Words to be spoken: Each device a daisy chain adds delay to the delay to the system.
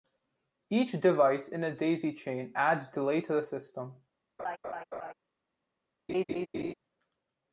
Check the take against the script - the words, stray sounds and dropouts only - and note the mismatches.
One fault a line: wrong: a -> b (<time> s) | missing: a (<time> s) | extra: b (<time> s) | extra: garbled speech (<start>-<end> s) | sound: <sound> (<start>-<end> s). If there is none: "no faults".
extra: in (1.5 s)
missing: delay to the (3.4 s)
sound: laugh (4.4-5.1 s)
sound: laugh (6.1-6.7 s)